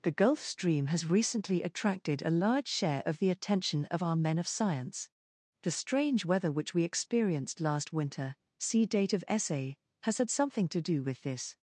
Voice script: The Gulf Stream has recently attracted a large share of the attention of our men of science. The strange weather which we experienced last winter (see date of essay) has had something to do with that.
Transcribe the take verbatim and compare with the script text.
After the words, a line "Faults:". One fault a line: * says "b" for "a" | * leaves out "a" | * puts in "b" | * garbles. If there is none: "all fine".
The Gulf Stream has recently attracted a large share of the attention of our men of science. The strange weather which we experienced last winter (see date of essay) has had something to do with this.
Faults:
* says "this" for "that"